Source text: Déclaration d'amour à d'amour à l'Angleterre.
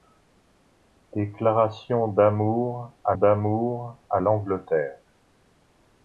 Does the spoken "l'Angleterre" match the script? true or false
true